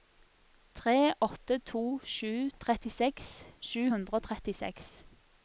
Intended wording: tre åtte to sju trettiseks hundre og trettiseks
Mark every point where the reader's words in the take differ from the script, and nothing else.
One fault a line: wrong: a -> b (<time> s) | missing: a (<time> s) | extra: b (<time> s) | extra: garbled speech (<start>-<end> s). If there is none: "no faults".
extra: sju (3.7 s)